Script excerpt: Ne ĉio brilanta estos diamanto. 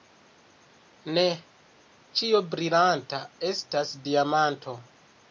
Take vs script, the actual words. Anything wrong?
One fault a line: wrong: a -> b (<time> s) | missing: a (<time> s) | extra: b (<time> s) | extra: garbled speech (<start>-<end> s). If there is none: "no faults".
wrong: estos -> estas (3.5 s)